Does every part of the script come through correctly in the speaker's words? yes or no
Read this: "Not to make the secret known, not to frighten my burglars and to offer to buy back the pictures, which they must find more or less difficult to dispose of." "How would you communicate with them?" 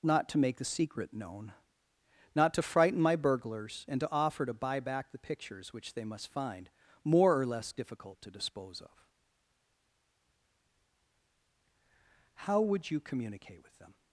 yes